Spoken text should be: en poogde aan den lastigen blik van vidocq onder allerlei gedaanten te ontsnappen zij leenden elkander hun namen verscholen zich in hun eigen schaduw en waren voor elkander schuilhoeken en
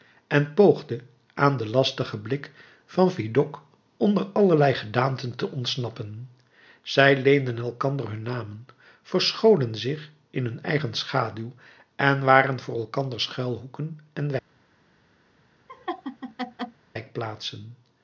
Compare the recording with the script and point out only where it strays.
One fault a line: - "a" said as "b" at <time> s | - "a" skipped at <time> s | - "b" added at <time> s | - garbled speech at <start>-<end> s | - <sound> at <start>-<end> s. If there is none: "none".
- laugh at 15.7-16.8 s